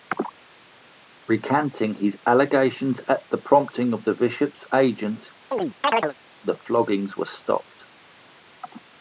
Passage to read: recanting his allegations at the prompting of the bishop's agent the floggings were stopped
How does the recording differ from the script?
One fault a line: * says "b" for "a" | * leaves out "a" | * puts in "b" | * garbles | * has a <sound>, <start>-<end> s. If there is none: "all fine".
* has a chirp, 5.5-6.1 s